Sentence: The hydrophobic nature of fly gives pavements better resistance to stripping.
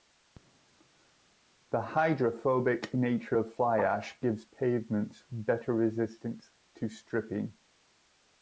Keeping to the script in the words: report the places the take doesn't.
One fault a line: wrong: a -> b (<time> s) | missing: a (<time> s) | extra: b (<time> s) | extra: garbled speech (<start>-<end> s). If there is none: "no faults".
extra: ash (3.8 s)